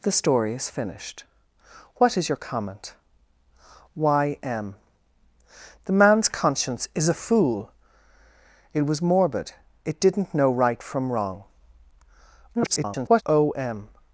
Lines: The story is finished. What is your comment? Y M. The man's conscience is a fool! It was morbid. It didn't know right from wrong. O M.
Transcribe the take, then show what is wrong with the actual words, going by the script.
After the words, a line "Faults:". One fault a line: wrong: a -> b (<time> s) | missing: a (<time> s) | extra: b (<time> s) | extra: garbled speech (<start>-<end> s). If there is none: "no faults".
The story is finished. What is your comment? Y M. The man's conscience is a fool! It was morbid. It didn't know right from wrong. [garbled] O M.
Faults:
extra: garbled speech (12.5-13.2 s)